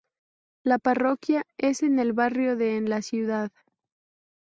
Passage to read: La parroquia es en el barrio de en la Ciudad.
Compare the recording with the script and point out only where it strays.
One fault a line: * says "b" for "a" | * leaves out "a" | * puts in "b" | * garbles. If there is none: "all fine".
all fine